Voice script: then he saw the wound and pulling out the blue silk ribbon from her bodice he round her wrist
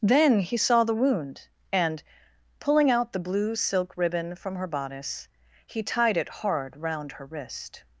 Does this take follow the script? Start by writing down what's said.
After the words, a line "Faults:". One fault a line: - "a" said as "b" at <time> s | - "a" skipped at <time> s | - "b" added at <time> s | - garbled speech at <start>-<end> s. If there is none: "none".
then he saw the wound and pulling out the blue silk ribbon from her bodice he tied it hard round her wrist
Faults:
- "tied it hard" added at 5.8 s